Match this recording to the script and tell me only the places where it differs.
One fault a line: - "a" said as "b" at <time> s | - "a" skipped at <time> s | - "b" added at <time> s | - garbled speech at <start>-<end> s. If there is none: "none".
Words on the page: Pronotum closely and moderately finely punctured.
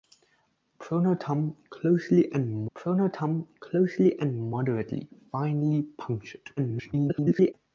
- "pronotum closely and" added at 2.7 s
- garbled speech at 6.6-7.5 s